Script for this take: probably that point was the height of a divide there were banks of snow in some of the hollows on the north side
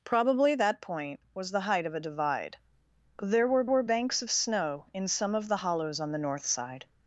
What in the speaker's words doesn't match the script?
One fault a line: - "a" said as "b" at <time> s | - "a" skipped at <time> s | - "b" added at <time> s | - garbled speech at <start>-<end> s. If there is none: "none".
- "were" added at 3.7 s